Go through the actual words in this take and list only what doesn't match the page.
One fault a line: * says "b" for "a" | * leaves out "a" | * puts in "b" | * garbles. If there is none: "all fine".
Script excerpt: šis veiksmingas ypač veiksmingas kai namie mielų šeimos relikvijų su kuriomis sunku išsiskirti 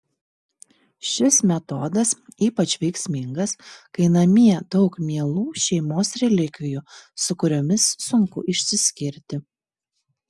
* says "metodas" for "veiksmingas"
* puts in "daug"